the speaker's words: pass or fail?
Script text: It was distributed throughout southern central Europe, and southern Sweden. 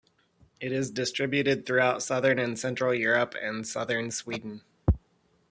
fail